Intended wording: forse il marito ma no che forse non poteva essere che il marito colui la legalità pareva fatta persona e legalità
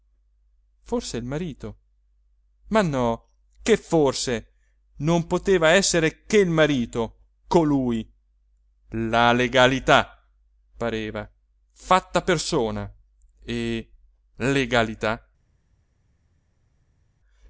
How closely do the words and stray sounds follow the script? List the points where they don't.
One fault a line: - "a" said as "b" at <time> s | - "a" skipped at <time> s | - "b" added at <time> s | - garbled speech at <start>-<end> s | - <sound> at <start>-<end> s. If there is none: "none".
none